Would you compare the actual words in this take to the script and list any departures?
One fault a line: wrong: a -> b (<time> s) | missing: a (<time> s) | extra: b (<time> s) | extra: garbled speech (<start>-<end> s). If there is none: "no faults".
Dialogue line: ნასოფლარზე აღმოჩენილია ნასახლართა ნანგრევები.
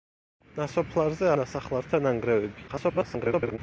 missing: აღმოჩენილია (1.3 s)
extra: garbled speech (2.7-3.6 s)